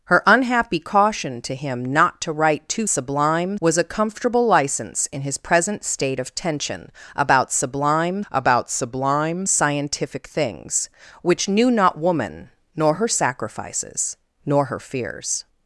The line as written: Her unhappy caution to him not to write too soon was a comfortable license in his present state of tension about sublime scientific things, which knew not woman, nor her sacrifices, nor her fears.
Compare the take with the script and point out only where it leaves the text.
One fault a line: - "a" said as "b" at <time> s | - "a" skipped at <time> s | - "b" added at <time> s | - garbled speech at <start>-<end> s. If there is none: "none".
- "soon" said as "sublime" at 2.9 s
- "about sublime" added at 8.3 s